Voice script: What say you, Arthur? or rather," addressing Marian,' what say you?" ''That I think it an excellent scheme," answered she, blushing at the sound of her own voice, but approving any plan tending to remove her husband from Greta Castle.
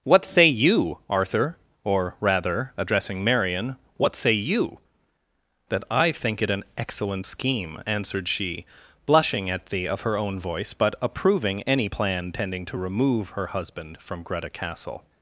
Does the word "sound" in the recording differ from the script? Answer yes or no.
yes